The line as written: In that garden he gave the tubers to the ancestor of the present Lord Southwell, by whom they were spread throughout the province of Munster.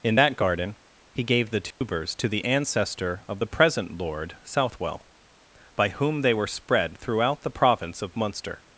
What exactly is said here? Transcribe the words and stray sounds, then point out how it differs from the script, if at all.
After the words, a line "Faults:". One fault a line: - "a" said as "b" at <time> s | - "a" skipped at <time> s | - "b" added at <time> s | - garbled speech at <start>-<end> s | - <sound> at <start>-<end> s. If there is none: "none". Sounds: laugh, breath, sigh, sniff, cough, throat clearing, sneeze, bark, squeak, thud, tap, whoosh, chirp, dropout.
In that garden he gave the tubers to the ancestor of the present Lord Southwell, by whom they were spread throughout the province of Munster.
Faults:
- dropout at 1.7-1.8 s